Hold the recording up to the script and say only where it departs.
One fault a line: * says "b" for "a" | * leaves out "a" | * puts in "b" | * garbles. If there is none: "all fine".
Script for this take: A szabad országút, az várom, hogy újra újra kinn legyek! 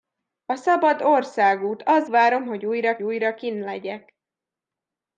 all fine